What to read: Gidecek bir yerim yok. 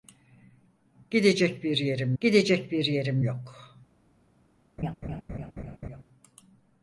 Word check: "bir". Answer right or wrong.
right